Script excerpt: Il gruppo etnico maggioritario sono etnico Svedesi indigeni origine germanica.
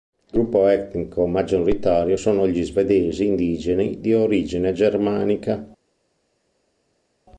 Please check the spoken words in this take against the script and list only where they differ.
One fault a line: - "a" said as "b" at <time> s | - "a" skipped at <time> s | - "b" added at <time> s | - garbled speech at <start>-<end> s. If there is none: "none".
- "etnico" said as "gli" at 2.5 s
- "di" added at 4.0 s